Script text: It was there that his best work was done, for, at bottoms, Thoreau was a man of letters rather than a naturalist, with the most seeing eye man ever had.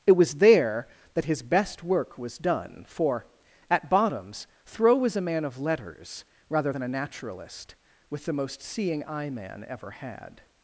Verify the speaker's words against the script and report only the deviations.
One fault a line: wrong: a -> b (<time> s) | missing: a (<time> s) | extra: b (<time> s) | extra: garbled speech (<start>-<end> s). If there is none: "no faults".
no faults